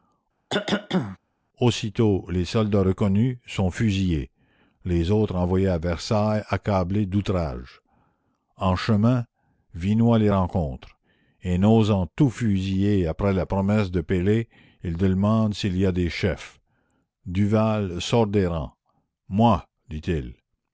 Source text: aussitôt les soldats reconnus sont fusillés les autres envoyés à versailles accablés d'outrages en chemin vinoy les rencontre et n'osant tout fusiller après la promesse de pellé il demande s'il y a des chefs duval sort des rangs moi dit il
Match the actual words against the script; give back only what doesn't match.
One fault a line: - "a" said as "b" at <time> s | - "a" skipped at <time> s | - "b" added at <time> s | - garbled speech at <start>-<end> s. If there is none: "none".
none